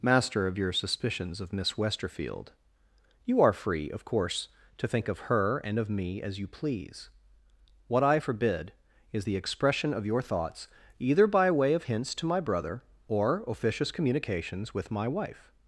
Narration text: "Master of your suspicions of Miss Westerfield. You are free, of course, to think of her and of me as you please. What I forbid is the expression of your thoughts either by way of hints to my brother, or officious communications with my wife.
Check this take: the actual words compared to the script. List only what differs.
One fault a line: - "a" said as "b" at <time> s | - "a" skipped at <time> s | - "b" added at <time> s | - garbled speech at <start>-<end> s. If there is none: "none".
none